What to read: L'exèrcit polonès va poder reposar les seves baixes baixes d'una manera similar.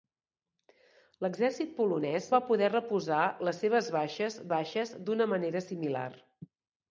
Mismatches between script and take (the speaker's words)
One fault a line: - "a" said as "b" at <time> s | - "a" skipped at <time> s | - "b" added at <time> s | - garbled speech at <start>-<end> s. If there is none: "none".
none